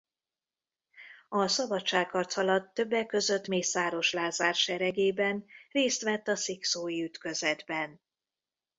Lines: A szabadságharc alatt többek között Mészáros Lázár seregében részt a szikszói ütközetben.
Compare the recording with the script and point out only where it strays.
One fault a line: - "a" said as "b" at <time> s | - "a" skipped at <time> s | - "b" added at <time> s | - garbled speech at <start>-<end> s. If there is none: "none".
- "vett" added at 6.0 s